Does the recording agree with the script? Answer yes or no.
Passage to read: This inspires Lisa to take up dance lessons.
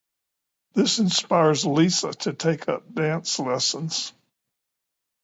yes